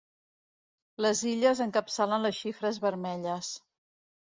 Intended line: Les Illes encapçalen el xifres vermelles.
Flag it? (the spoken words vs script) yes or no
yes